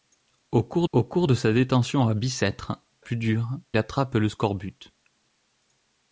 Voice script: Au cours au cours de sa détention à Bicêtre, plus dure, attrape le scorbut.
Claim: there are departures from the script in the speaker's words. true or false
false